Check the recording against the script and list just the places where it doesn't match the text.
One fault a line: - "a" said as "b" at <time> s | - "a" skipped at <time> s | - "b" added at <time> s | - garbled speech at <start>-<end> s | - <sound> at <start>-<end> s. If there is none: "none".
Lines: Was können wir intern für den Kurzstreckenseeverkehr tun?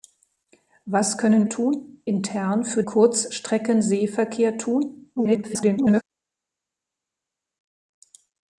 - "wir" said as "tun" at 1.5 s
- "den" skipped at 2.8 s
- garbled speech at 5.2-6.0 s